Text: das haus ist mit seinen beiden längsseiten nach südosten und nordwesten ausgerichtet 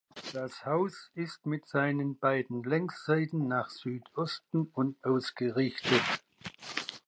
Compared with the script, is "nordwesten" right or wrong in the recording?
wrong